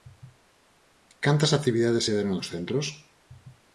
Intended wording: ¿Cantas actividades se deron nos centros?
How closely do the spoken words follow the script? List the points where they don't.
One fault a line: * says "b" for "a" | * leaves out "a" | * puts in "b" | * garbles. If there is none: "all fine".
all fine